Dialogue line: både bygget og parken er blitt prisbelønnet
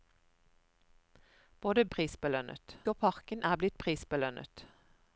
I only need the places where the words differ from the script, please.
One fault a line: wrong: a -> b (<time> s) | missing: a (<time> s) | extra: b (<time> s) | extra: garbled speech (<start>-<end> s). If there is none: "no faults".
wrong: bygget -> prisbelønnet (1.9 s)